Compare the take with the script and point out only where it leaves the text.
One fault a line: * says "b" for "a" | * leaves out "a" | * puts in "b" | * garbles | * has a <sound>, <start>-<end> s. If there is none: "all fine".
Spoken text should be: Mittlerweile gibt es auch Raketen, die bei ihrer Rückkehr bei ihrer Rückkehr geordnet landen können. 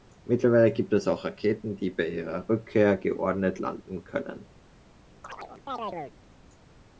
* leaves out "bei ihrer Rückkehr"
* has a chirp, 5.2-6.2 s